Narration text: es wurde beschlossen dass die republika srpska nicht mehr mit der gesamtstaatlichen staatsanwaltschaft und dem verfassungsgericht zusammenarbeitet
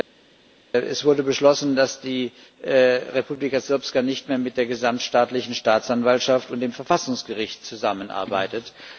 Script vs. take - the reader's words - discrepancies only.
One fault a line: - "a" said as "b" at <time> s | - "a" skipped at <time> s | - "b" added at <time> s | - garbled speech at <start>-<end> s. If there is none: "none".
none